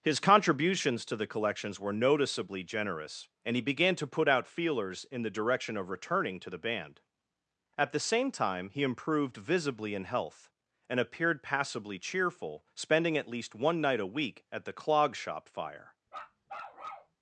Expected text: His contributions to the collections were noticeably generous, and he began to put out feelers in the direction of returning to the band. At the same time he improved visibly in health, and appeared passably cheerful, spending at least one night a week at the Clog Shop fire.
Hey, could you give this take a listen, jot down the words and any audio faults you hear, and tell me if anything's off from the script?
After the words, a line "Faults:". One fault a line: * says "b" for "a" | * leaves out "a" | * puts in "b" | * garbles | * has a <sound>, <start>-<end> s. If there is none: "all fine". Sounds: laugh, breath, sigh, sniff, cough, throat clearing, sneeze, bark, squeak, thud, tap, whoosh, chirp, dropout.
His contributions to the collections were noticeably generous, and he began to put out feelers in the direction of returning to the band. At the same time he improved visibly in health, and appeared passably cheerful, spending at least one night a week at the Clog Shop fire.
Faults:
* has a bark, 16.1-17.2 s